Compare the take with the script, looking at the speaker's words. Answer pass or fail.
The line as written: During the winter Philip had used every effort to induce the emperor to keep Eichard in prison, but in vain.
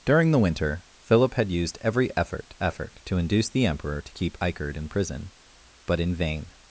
fail